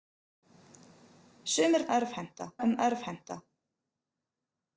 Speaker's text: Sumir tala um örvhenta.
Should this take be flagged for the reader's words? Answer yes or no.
yes